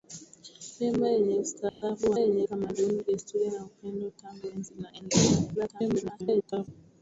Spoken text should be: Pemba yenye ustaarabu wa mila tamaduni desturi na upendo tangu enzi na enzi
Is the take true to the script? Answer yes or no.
no